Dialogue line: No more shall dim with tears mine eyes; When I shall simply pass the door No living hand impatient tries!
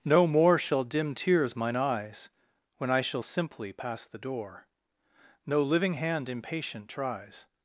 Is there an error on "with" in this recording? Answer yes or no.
yes